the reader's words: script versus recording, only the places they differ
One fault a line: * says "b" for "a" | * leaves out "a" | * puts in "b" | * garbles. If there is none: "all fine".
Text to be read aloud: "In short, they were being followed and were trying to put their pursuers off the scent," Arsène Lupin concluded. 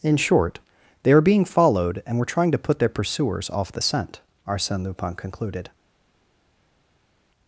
* says "are" for "were"